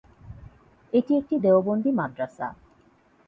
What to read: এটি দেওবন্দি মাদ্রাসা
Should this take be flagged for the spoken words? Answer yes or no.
yes